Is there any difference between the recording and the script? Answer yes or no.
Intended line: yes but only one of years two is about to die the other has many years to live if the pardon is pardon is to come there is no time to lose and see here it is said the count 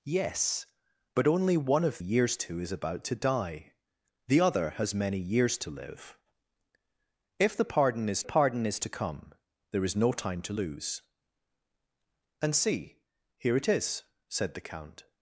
no